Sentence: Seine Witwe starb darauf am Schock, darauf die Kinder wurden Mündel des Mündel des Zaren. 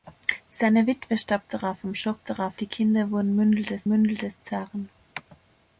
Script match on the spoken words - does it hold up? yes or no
yes